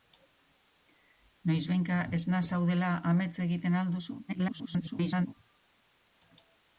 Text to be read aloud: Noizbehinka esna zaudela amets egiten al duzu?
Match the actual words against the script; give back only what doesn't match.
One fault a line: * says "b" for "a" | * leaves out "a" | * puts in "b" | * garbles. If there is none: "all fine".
* garbles